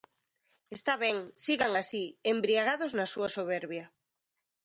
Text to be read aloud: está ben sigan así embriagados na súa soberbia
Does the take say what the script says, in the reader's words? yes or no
yes